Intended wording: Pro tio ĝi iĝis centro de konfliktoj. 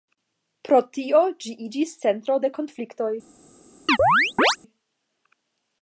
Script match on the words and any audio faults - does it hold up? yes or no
no